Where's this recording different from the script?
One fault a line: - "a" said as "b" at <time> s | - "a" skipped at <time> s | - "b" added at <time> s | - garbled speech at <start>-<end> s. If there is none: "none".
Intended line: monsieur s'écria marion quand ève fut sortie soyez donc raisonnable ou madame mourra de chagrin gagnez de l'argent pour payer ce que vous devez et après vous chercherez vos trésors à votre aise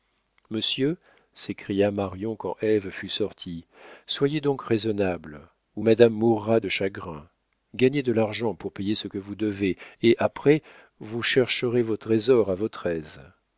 none